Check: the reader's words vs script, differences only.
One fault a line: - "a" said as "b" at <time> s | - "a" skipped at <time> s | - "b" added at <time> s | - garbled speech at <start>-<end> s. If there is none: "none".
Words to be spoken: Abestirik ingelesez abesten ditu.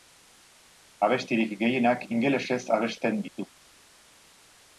- "gehienak" added at 1.6 s